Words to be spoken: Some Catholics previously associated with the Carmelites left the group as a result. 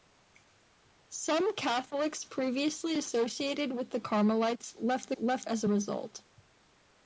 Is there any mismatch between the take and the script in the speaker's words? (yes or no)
yes